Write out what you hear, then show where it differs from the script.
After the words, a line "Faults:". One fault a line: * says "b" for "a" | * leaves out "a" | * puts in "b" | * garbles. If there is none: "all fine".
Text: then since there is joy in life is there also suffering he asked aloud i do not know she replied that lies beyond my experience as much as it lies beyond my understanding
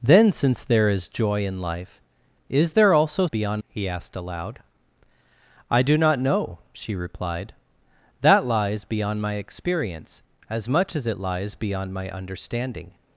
then since there is joy in life is there also beyond he asked aloud i do not know she replied that lies beyond my experience as much as it lies beyond my understanding
Faults:
* says "beyond" for "suffering"